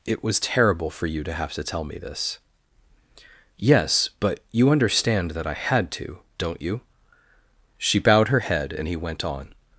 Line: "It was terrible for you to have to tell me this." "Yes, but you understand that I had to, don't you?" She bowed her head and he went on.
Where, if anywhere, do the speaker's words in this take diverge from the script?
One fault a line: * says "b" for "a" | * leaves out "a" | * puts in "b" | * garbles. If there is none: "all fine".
all fine